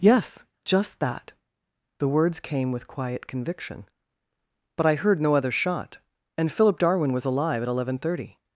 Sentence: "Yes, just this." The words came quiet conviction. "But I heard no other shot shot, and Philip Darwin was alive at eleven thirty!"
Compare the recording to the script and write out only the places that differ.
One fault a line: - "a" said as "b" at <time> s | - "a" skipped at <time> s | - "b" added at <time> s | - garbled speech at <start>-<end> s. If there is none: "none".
- "this" said as "that" at 1.0 s
- "with" added at 2.7 s
- "shot" skipped at 6.0 s